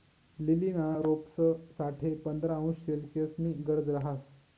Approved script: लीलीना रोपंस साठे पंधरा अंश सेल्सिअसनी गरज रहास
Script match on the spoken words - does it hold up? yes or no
yes